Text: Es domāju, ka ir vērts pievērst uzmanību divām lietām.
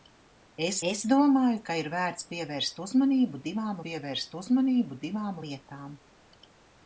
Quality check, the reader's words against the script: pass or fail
fail